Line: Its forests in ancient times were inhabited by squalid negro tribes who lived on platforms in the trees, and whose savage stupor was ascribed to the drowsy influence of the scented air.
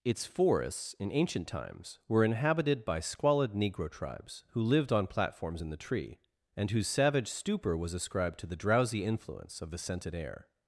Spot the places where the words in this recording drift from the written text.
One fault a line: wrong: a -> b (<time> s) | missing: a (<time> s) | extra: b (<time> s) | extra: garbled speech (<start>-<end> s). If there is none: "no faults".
wrong: trees -> tree (5.8 s)